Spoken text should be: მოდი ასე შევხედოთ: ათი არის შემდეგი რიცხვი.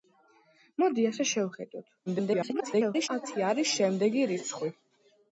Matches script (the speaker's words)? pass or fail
fail